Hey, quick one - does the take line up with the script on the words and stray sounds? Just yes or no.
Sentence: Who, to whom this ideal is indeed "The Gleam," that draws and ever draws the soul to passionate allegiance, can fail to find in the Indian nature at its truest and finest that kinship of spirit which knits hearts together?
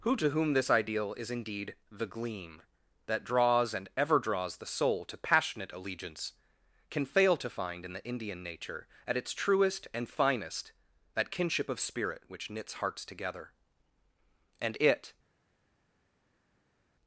no